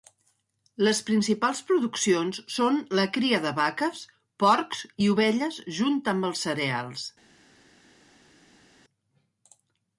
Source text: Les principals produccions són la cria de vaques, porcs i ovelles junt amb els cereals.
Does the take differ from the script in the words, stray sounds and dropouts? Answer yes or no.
no